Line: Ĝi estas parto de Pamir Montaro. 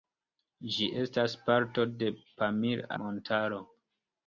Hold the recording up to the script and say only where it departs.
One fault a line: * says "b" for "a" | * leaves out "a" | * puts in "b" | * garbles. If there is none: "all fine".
all fine